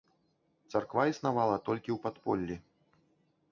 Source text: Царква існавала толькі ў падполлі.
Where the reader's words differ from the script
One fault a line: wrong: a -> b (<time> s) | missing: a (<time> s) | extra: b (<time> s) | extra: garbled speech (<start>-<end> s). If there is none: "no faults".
no faults